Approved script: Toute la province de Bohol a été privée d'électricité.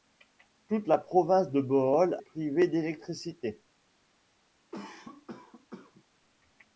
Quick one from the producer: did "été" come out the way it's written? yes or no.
no